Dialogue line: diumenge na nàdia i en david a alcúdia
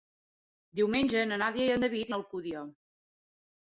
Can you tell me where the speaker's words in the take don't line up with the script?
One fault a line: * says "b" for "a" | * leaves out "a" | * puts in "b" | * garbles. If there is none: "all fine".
all fine